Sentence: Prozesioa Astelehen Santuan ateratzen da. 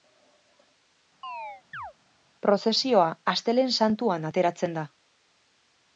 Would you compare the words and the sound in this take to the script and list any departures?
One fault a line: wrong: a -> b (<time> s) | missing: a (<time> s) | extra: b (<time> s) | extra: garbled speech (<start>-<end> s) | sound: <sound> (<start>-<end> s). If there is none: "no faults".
sound: chirp (1.2-1.9 s)